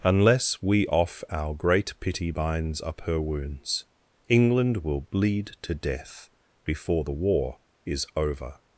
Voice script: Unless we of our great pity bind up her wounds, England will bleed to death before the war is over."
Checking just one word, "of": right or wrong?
wrong